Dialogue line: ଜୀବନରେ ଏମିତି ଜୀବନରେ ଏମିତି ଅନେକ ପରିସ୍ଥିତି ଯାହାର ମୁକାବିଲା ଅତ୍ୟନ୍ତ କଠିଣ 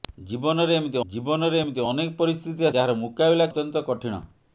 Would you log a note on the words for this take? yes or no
no